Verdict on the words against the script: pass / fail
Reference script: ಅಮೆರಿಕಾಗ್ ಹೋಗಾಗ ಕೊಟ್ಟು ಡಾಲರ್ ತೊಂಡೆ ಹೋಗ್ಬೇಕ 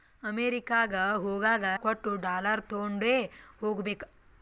pass